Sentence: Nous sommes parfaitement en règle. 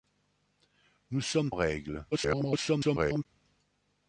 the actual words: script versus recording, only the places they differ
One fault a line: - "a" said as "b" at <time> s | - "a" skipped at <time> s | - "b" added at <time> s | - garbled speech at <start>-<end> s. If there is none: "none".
- "parfaitement" skipped at 1.5 s
- garbled speech at 2.1-3.3 s